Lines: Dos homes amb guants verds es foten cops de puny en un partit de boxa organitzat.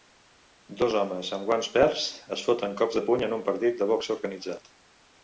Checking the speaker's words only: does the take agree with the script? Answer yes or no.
yes